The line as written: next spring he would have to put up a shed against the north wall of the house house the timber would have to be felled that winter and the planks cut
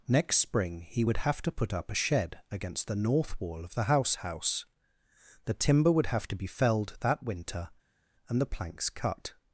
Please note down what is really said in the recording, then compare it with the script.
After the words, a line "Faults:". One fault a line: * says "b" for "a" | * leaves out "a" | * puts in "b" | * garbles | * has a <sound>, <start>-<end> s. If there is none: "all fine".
next spring he would have to put up a shed against the north wall of the house house the timber would have to be felled that winter and the planks cut
Faults:
all fine